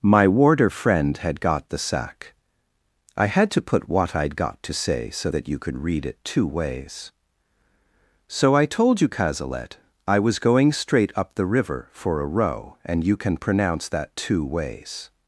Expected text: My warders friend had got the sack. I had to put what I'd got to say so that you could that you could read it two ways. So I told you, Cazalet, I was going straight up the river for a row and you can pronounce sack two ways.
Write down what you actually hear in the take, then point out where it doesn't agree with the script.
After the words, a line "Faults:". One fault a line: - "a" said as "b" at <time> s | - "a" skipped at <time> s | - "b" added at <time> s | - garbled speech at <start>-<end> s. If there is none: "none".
My warder friend had got the sack. I had to put what I'd got to say so that you could read it two ways. So I told you, Cazalet, I was going straight up the river for a row and you can pronounce that two ways.
Faults:
- "warders" said as "warder" at 0.3 s
- "that you could" skipped at 5.8 s
- "sack" said as "that" at 13.9 s